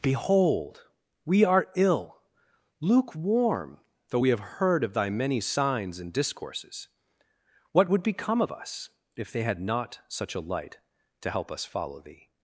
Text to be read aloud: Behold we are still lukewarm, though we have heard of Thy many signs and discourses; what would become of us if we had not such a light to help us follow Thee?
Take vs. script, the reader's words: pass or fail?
fail